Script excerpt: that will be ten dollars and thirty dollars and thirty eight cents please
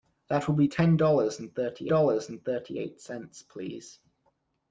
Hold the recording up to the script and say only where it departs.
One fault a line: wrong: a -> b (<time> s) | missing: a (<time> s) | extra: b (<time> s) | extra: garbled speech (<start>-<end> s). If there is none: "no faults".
no faults